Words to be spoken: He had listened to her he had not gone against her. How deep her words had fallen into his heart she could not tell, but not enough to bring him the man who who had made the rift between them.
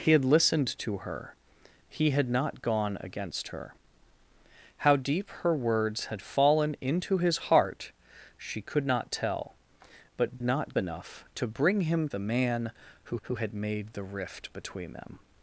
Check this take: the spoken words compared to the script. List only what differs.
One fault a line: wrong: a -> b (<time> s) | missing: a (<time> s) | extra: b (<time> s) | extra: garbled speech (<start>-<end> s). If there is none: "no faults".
no faults